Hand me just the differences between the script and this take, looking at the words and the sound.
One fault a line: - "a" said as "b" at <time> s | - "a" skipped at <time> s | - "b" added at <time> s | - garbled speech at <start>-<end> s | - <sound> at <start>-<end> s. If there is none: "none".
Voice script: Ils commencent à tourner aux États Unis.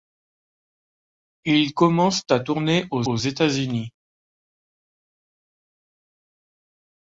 - "aux" added at 3.0 s